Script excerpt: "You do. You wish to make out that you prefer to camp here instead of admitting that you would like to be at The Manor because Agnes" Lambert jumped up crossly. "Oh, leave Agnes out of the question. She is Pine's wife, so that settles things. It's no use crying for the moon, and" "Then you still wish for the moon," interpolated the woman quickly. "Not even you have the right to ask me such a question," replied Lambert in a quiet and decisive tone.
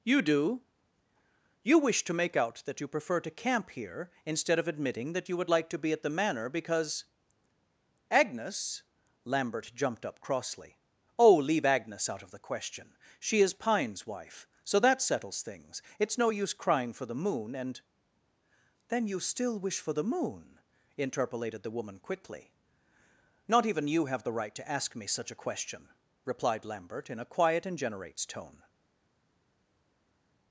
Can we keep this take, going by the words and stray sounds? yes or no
no